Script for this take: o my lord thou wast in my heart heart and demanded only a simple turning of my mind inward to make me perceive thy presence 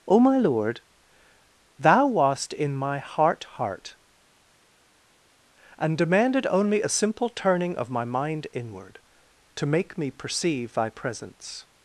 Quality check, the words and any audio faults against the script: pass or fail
pass